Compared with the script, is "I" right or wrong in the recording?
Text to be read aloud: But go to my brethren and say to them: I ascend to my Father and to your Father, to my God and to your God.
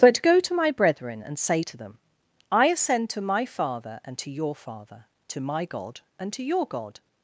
right